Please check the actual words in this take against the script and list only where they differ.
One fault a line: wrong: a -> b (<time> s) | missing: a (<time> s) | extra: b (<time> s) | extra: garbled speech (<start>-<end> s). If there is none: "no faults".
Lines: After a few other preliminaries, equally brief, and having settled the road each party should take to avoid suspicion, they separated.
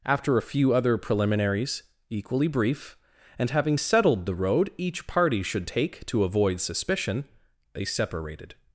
no faults